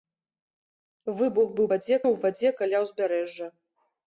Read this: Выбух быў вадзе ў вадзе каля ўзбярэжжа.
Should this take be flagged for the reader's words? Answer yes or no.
no